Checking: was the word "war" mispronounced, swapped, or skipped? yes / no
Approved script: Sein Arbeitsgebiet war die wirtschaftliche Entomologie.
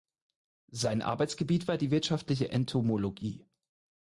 no